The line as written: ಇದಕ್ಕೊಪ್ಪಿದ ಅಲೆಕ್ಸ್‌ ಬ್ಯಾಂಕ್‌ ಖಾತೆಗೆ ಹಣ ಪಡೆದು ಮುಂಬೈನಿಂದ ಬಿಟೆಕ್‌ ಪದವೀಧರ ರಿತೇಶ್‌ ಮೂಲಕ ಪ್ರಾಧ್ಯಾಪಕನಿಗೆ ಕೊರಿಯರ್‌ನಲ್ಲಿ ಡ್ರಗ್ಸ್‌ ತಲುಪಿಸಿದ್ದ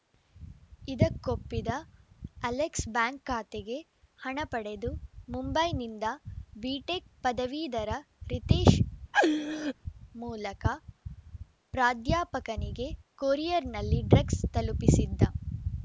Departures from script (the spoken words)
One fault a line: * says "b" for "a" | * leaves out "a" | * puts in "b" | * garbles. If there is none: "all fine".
all fine